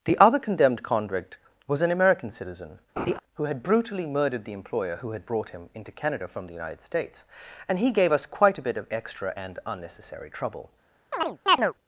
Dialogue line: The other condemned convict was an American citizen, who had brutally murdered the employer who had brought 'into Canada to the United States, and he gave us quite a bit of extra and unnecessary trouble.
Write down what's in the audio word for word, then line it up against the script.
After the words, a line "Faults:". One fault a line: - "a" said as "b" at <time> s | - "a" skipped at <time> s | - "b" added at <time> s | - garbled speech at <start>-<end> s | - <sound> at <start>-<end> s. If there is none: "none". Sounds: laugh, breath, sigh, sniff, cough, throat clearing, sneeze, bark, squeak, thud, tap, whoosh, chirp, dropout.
The other condemned convict was an American citizen, who had brutally murdered the employer who had brought 'him into Canada from the United States, and he gave us quite a bit of extra and unnecessary trouble.
Faults:
- laugh at 3.0-3.2 s
- "him" added at 5.5 s
- "to" said as "from" at 6.3 s
- chirp at 11.1-11.7 s